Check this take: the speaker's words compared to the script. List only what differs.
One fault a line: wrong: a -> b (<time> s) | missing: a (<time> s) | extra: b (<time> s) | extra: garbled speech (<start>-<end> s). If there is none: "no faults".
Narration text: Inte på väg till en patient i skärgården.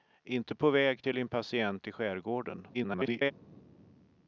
extra: garbled speech (2.7-3.3 s)